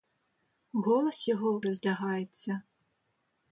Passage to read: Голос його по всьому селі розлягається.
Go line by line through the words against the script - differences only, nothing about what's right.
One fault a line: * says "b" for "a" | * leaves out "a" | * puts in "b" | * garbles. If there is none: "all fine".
* leaves out "по всьому селі"